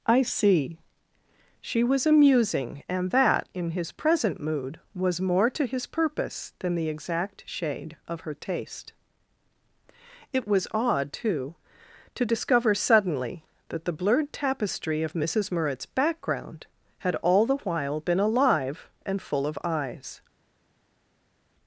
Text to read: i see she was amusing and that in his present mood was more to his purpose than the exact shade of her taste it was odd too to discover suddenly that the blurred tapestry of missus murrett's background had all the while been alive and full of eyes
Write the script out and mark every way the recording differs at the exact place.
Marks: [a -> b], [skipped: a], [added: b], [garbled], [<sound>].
i see she was amusing and that in his present mood was more to his purpose than the exact shade of her taste it was odd too to discover suddenly that the blurred tapestry of missus murrett's background had all the while been alive and full of eyes